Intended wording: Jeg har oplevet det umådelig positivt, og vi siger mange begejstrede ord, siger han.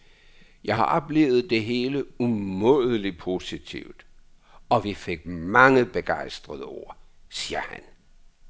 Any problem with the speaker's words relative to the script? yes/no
yes